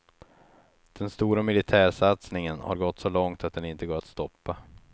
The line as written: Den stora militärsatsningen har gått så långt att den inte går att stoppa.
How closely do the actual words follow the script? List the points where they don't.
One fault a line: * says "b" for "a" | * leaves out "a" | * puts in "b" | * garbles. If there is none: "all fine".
all fine